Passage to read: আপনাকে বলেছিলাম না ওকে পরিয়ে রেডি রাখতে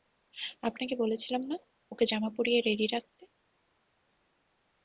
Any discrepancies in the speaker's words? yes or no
yes